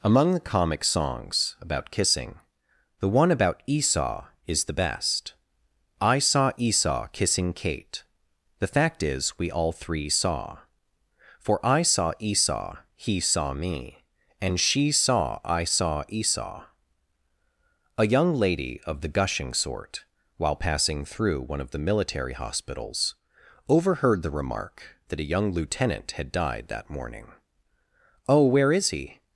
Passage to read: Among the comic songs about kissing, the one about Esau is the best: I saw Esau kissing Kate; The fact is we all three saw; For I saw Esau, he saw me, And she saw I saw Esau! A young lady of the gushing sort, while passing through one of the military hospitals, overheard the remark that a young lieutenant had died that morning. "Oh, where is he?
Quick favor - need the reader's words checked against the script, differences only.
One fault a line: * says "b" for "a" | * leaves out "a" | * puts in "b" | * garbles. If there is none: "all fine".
all fine